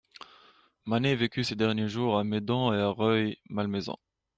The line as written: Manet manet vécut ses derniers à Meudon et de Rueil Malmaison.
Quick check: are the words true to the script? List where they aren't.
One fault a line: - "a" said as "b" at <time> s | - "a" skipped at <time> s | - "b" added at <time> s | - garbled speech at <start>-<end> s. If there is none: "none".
- "manet" skipped at 1.1 s
- "jours" added at 1.9 s
- "de" said as "à" at 2.8 s